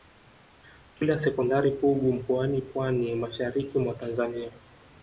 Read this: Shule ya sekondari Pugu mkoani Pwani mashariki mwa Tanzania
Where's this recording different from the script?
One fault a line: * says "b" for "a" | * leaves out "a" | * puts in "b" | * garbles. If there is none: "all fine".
all fine